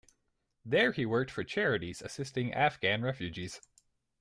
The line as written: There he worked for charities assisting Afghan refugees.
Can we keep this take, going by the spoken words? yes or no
yes